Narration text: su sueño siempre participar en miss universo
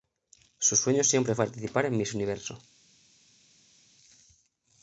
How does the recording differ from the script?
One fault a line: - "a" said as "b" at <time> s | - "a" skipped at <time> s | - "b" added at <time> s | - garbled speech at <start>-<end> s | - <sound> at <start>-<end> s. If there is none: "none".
none